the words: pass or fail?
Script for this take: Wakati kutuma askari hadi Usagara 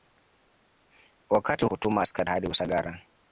pass